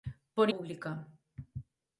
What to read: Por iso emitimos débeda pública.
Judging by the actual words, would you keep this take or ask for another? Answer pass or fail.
fail